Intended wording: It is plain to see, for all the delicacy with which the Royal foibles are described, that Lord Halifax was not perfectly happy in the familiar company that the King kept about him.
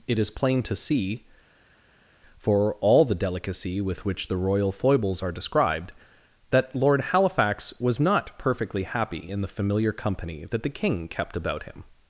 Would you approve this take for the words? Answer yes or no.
yes